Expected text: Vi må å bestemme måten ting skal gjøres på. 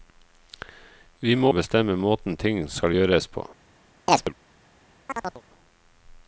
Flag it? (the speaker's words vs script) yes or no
no